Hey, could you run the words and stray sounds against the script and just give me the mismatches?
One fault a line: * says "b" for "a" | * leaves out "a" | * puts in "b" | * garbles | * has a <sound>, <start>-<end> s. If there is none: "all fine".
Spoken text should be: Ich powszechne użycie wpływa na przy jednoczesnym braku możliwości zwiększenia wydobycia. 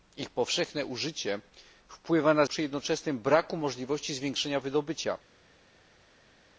all fine